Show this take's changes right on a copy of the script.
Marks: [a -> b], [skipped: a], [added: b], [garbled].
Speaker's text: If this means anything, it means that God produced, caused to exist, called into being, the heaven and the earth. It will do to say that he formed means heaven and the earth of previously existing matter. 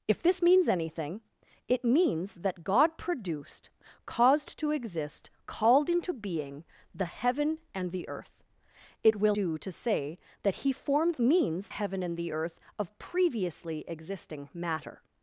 If this means anything, it means that God produced, caused to exist, called into being, the heaven and the earth. It will do to say that he formed means heaven and the earth of previously existing matter.